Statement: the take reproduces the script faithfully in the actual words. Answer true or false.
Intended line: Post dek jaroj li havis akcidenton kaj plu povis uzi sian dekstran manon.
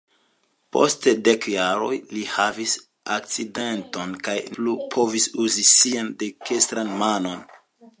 true